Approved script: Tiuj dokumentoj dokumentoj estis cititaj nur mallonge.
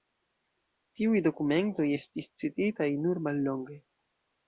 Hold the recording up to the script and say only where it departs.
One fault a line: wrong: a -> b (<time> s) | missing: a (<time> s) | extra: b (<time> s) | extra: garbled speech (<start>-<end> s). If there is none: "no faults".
missing: dokumentoj (1.9 s)